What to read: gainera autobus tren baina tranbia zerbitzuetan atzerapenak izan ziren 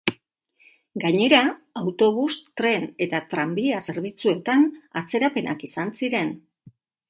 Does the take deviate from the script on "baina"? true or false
true